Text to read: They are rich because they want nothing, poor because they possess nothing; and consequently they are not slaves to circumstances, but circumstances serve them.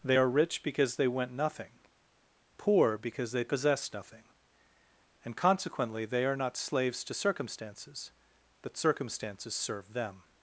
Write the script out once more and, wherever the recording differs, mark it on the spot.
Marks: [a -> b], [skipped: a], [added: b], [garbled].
They are rich because they [want -> went] nothing, poor because they possess nothing; and consequently they are not slaves to circumstances, but circumstances serve them.